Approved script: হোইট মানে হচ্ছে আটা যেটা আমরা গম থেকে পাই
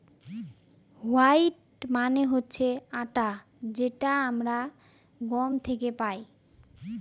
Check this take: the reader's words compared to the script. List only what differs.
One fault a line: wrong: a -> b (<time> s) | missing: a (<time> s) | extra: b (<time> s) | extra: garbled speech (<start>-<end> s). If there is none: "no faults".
no faults